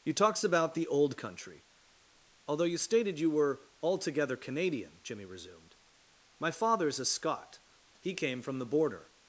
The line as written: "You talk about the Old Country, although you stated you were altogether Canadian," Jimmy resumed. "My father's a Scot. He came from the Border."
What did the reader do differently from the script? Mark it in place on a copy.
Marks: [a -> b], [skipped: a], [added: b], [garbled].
"You [talk -> talks] about the Old Country, although you stated you were altogether Canadian," Jimmy resumed. "My father's a Scot. He came from the Border."